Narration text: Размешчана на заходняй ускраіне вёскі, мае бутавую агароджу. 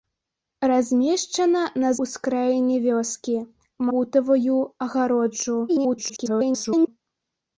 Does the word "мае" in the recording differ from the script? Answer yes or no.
yes